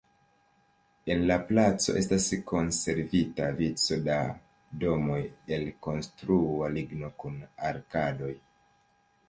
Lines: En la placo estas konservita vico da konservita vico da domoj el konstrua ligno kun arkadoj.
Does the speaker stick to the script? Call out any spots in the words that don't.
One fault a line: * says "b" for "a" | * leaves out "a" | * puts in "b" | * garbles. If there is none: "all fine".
* leaves out "konservita vico da"